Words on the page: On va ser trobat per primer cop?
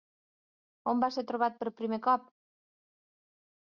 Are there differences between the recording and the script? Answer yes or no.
no